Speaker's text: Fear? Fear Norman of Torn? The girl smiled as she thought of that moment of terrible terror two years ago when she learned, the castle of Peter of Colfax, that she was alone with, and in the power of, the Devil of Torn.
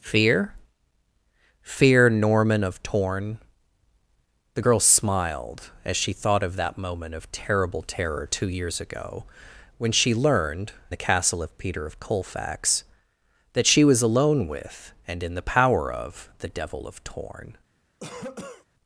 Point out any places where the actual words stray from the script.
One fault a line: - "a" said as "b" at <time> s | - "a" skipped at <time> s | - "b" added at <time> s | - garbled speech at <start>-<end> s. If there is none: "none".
none